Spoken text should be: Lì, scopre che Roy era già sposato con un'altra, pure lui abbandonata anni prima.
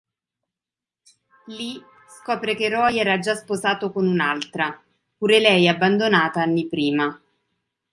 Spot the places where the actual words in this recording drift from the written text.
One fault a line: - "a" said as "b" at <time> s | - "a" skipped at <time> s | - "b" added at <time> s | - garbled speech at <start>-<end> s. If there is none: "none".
- "lui" said as "lei" at 5.4 s